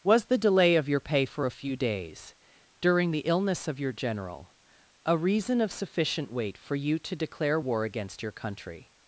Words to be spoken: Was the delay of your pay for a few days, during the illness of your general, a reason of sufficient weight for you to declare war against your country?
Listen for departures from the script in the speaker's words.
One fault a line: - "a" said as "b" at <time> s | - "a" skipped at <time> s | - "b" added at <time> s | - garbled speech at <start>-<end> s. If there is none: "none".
none